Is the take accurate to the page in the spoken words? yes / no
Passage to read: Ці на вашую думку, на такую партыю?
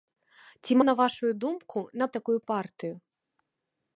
yes